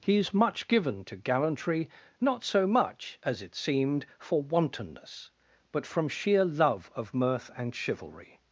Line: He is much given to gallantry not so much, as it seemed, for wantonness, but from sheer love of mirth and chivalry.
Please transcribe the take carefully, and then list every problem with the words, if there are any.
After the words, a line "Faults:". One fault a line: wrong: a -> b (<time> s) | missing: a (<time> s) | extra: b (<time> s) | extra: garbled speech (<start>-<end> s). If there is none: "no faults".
He is much given to gallantry not so much, as it seemed, for wantonness, but from sheer love of mirth and chivalry.
Faults:
no faults